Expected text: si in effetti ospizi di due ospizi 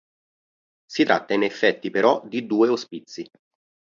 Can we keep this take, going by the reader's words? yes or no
no